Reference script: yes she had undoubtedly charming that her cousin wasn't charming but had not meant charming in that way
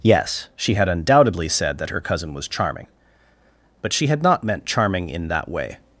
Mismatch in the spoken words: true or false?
true